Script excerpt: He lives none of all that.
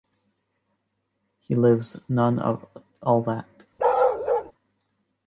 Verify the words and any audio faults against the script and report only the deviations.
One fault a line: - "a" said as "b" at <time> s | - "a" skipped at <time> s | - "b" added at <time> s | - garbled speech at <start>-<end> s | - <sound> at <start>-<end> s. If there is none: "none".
- bark at 3.8-4.5 s